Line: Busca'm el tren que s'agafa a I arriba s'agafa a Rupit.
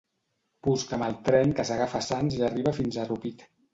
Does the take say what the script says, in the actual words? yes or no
no